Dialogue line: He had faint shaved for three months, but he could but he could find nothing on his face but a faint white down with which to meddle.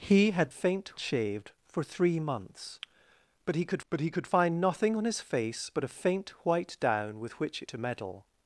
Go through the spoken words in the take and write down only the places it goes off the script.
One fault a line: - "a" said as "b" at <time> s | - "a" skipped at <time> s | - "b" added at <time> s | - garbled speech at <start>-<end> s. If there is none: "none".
none